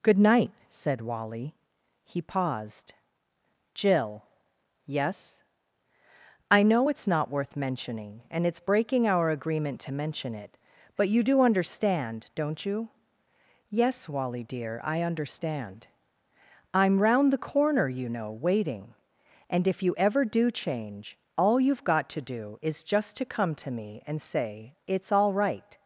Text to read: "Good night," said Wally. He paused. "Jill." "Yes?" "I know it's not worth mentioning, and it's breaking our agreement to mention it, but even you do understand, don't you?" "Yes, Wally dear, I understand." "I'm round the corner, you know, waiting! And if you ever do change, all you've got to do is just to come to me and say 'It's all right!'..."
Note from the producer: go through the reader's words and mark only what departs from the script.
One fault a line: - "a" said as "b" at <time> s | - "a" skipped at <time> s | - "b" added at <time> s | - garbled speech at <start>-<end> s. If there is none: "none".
- "even" skipped at 11.1 s